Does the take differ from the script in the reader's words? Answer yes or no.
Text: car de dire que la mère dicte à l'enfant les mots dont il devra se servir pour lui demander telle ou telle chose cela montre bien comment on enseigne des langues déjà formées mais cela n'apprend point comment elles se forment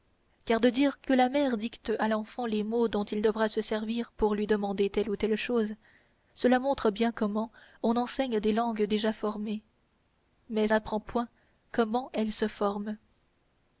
yes